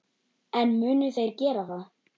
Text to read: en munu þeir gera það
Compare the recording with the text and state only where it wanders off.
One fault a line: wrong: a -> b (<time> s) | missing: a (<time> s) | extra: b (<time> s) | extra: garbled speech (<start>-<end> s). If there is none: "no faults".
no faults